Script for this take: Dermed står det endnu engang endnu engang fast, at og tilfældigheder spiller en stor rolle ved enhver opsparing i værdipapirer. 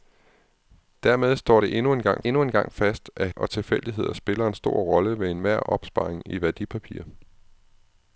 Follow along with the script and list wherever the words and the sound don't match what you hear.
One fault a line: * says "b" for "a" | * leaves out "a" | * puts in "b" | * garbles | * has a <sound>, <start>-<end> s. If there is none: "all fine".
all fine